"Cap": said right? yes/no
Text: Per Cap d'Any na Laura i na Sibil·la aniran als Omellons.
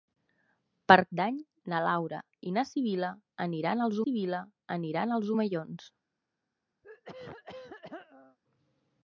no